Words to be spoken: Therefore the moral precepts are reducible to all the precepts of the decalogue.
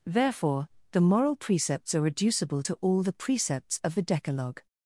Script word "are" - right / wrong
right